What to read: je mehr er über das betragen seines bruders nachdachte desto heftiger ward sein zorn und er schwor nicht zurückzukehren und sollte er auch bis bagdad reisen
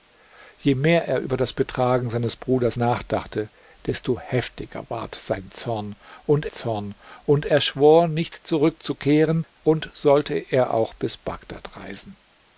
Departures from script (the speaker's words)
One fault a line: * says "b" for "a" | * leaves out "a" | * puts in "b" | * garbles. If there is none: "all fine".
* puts in "zorn und"